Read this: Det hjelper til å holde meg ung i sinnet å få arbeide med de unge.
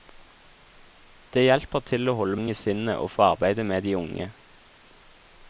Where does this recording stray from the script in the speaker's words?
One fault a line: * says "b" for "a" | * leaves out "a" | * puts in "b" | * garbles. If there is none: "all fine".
* leaves out "meg"